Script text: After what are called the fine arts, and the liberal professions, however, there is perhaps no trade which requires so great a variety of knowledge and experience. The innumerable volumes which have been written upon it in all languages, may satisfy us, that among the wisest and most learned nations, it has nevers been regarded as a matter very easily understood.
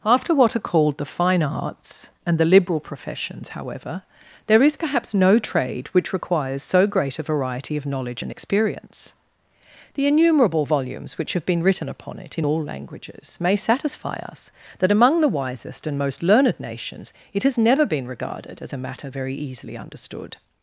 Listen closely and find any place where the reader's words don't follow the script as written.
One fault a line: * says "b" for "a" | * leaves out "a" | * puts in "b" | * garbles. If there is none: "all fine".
* says "never" for "nevers"